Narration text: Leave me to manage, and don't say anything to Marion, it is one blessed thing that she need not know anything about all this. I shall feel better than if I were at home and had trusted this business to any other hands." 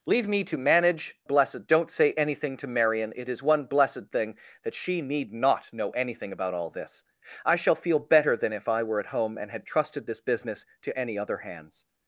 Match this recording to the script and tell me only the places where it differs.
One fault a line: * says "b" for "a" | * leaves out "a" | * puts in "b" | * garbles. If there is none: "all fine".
* says "blessed" for "and"